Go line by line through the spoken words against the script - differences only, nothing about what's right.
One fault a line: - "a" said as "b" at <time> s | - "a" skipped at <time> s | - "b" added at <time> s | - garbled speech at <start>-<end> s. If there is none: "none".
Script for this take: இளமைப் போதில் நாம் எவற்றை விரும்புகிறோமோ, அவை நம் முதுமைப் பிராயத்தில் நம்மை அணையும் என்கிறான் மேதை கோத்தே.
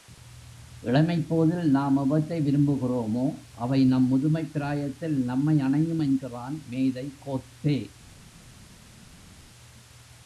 none